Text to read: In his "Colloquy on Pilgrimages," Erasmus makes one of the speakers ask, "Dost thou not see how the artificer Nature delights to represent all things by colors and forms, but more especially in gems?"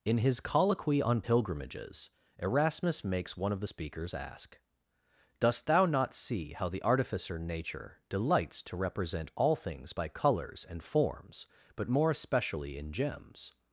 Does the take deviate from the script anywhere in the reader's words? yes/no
no